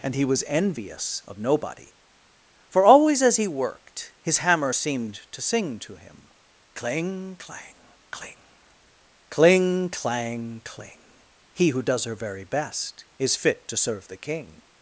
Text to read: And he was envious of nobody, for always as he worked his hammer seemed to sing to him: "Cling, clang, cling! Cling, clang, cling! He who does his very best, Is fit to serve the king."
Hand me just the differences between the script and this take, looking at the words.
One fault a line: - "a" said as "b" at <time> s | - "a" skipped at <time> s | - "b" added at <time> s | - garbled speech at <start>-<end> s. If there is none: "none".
- "his" said as "her" at 12.0 s